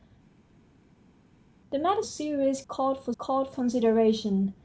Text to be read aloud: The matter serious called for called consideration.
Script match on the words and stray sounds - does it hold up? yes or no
yes